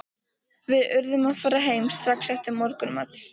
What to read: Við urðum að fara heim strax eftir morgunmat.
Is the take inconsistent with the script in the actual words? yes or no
no